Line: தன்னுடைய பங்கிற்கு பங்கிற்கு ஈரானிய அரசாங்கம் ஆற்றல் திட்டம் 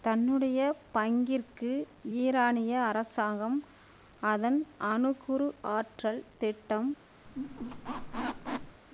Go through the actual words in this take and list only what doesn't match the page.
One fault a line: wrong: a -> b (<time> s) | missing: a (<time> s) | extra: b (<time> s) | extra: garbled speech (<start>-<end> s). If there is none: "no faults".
missing: பங்கிற்கு (1.7 s)
extra: அதன் அணுக்குரு (4.2 s)